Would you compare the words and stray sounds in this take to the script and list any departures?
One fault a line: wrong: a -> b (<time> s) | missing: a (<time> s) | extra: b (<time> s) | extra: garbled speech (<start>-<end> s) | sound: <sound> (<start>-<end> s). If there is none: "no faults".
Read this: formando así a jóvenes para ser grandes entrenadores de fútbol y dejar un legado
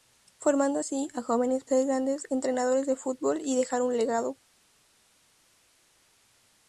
missing: para (1.7 s)